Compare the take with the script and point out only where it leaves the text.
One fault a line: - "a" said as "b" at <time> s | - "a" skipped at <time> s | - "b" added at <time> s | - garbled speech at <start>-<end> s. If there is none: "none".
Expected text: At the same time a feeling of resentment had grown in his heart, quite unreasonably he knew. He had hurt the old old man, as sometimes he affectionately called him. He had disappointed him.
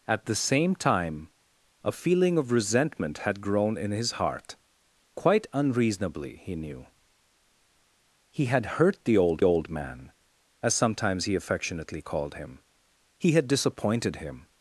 none